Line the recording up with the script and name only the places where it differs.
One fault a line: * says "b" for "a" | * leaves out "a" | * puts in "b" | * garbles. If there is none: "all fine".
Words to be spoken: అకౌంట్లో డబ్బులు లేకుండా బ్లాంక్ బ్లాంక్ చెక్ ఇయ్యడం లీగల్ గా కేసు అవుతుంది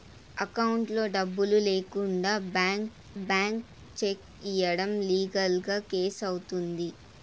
all fine